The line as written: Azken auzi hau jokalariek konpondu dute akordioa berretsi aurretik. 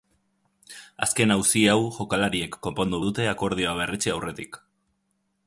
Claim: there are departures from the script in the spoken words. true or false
false